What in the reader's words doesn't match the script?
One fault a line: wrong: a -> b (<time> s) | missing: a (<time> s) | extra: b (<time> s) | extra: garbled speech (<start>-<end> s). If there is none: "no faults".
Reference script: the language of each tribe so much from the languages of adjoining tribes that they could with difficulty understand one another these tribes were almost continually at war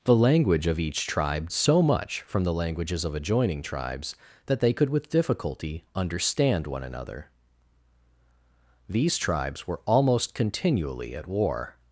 no faults